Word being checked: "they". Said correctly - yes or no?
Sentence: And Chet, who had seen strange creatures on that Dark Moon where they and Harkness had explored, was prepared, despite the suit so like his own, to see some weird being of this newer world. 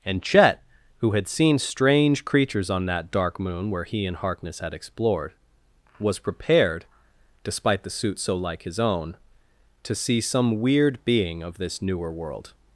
no